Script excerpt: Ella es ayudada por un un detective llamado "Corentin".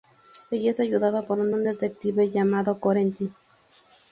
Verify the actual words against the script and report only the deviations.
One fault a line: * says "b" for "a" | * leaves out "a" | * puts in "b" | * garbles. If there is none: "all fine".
all fine